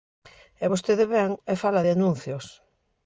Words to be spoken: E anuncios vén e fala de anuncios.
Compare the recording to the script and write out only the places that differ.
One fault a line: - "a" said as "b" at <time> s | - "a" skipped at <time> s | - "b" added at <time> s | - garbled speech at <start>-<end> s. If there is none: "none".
- "anuncios" said as "vostede" at 0.7 s